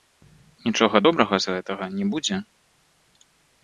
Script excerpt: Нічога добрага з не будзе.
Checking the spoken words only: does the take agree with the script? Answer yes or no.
no